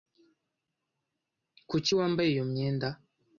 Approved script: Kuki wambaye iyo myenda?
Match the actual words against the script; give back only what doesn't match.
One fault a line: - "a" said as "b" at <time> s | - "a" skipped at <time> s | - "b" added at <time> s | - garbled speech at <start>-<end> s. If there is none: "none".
none